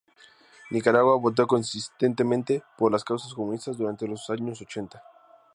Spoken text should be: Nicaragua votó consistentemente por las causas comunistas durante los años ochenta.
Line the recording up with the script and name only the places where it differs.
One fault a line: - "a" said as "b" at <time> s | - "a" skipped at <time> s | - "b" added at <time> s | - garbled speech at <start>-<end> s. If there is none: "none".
none